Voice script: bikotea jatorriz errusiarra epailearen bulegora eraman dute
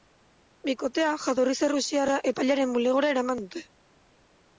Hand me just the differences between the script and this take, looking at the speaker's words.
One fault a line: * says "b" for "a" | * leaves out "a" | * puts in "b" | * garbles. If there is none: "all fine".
all fine